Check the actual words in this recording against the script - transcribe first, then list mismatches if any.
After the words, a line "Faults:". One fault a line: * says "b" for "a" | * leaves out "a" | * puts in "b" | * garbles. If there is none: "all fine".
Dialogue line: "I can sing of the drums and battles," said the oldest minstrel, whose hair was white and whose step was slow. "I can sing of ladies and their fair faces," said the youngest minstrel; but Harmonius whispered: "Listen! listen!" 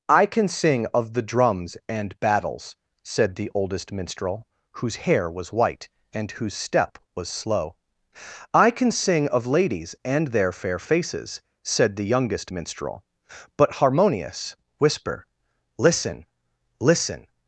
"I can sing of the drums and battles," said the oldest minstrel, whose hair was white and whose step was slow. "I can sing of ladies and their fair faces," said the youngest minstrel; but Harmonius whisper: "Listen! listen!"
Faults:
* says "whisper" for "whispered"